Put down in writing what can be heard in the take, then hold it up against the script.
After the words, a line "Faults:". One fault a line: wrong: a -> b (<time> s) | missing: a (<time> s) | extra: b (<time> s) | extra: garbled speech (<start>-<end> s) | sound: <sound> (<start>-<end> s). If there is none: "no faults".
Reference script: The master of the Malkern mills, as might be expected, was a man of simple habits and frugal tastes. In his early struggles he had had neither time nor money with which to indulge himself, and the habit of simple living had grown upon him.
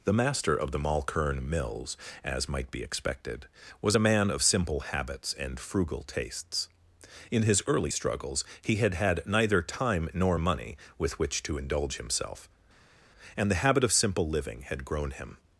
The master of the Malkern mills, as might be expected, was a man of simple habits and frugal tastes. In his early struggles he had had neither time nor money with which to indulge himself, and the habit of simple living had grown him.
Faults:
missing: upon (15.1 s)